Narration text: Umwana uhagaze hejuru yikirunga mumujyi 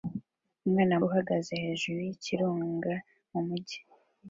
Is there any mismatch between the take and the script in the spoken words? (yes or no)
no